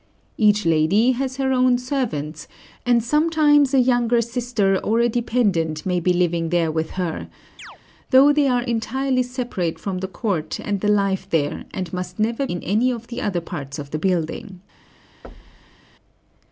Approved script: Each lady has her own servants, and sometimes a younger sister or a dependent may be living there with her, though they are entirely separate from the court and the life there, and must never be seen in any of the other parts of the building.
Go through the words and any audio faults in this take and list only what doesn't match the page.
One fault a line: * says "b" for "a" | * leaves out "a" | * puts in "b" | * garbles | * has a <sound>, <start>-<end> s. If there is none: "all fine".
* has a chirp, 7.6-7.8 s
* leaves out "be seen"
* has a thud, 15.2-15.8 s